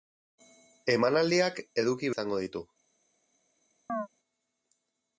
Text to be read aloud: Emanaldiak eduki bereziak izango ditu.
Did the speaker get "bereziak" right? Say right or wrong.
wrong